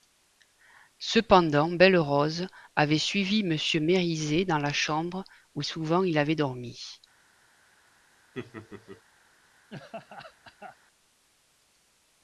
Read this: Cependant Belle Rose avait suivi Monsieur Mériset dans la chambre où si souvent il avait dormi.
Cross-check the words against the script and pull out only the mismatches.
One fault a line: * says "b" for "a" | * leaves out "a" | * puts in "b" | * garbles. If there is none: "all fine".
* leaves out "si"